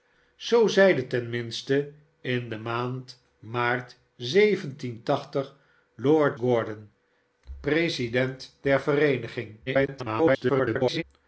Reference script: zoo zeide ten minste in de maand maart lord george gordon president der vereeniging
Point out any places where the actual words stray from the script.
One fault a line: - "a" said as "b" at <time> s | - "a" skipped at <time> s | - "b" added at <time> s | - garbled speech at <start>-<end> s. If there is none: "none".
- "george" skipped at 6.4 s
- garbled speech at 9.7-11.0 s